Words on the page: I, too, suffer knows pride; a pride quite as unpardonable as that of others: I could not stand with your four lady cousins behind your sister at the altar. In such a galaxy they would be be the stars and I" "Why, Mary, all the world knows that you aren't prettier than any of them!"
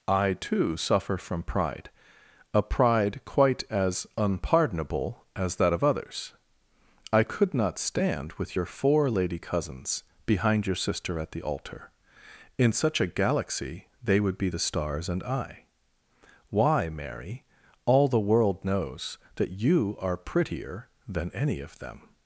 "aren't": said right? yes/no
no